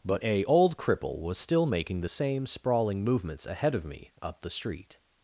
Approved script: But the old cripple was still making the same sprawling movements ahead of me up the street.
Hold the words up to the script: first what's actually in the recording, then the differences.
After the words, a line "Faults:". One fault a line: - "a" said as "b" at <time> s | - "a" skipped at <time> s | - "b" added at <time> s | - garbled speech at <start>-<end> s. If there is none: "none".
But a old cripple was still making the same sprawling movements ahead of me up the street.
Faults:
- "the" said as "a" at 0.2 s